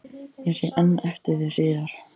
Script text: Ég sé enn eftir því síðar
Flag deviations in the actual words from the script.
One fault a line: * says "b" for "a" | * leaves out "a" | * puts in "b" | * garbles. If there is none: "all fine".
all fine